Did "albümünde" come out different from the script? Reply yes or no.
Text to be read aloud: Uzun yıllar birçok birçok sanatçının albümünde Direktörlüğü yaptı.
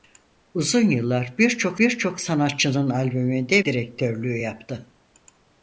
no